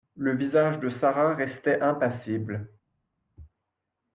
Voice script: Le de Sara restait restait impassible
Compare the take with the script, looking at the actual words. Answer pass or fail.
fail